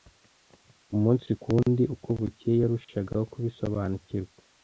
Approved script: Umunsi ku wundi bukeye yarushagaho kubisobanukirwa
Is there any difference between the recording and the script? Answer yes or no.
yes